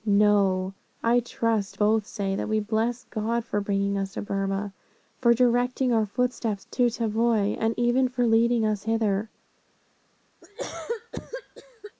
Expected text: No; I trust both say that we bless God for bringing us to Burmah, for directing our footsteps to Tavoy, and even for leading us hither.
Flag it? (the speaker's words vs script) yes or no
no